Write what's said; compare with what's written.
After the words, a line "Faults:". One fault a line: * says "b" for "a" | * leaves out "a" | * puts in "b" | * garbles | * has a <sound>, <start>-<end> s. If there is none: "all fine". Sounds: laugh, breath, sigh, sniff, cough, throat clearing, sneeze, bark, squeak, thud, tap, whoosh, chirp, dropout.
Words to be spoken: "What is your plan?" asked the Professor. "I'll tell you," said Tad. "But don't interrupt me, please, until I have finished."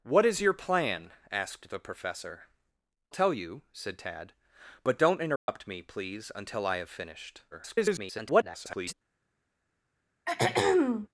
"What is your plan?" asked the Professor. "Tell you," said Tad. "But don't interrupt me, please, until I have finished." [garbled]
Faults:
* leaves out "I'll"
* has a dropout, 5.4-5.5 s
* garbles
* has a throat clearing, 10.3-11.1 s